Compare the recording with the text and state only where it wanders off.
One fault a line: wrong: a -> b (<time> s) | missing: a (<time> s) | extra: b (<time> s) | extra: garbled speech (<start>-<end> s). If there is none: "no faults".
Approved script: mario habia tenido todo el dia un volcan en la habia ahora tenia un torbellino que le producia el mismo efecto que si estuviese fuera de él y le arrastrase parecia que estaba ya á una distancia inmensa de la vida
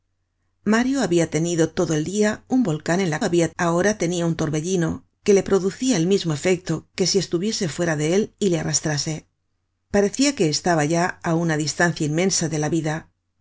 no faults